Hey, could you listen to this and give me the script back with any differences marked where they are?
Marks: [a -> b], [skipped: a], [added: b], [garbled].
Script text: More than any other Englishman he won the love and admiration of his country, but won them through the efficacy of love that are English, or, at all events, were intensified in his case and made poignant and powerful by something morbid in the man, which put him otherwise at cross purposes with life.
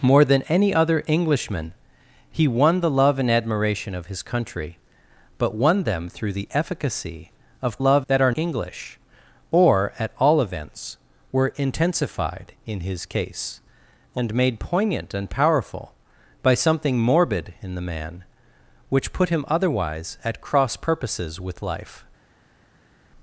More than any other Englishman he won the love and admiration of his country, but won them through the efficacy of love that are English, or, at all events, were intensified in his case and made poignant and powerful by something morbid in the man, which put him otherwise at cross purposes with life.